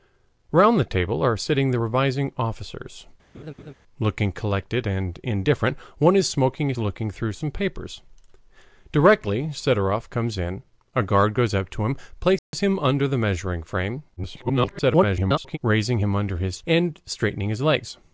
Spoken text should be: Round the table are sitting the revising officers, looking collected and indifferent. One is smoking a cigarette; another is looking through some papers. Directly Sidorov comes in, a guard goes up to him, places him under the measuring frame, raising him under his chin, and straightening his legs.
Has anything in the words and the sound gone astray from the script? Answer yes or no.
yes